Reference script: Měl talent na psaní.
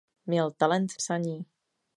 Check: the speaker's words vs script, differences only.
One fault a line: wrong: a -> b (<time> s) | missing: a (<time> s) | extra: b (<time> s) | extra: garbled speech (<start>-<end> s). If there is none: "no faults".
missing: na (0.9 s)